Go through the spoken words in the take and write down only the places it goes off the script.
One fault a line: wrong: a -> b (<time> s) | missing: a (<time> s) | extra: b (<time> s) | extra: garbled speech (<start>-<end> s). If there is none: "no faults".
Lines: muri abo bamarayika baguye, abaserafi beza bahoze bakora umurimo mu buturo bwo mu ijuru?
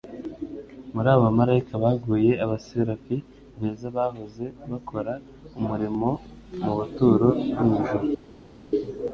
no faults